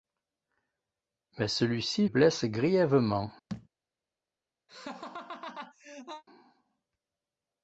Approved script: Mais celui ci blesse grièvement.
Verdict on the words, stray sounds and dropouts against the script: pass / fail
fail